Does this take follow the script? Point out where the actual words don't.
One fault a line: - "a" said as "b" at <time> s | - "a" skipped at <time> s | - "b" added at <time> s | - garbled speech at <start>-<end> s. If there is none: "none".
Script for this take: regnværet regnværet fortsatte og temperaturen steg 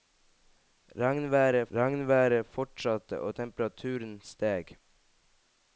none